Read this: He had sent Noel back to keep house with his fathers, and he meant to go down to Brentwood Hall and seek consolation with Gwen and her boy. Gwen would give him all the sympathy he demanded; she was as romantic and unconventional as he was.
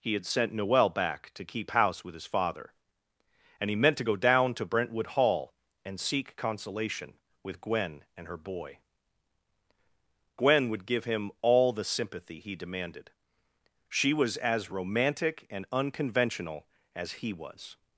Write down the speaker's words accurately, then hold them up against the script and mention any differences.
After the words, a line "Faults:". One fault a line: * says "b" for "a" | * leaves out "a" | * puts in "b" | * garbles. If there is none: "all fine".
He had sent Noel back to keep house with his father, and he meant to go down to Brentwood Hall and seek consolation with Gwen and her boy. Gwen would give him all the sympathy he demanded; she was as romantic and unconventional as he was.
Faults:
* says "father" for "fathers"